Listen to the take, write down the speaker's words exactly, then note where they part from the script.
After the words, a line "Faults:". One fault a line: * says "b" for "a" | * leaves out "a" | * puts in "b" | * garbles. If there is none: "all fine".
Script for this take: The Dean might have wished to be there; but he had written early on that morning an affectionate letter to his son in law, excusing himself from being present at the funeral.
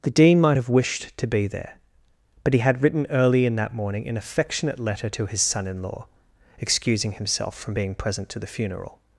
The Dean might have wished to be there; but he had written early in that morning an affectionate letter to his son in law, excusing himself from being present to the funeral.
Faults:
* says "in" for "on"
* says "to" for "at"